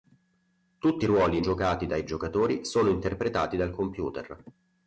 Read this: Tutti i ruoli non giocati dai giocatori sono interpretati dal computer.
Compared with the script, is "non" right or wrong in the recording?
wrong